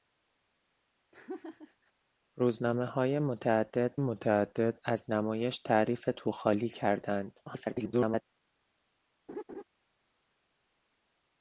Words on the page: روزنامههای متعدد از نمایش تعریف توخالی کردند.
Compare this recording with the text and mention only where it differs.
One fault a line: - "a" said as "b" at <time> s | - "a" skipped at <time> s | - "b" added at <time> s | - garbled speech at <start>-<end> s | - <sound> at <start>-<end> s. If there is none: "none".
- laugh at 1.1-1.9 s
- "متعدد" added at 4.0 s
- garbled speech at 7.5-8.2 s
- laugh at 9.3-9.6 s